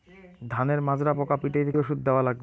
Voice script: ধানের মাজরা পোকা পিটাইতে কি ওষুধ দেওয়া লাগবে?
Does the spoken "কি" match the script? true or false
false